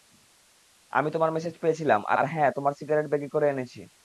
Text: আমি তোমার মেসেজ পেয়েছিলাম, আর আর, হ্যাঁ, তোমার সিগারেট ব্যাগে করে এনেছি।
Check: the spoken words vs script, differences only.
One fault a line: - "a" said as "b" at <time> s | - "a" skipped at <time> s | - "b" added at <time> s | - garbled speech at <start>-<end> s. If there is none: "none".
none